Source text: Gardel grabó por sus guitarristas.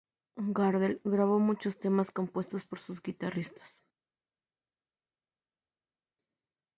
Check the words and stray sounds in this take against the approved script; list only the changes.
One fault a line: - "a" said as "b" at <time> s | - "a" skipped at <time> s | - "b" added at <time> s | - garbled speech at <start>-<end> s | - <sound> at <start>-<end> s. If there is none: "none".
- "muchos temas compuestos" added at 1.4 s